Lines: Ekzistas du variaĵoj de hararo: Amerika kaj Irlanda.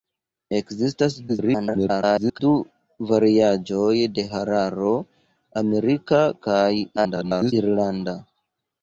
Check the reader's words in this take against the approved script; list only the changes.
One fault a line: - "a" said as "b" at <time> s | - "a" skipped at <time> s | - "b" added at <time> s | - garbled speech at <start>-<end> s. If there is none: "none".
- garbled speech at 1.3-2.4 s
- garbled speech at 7.0-7.5 s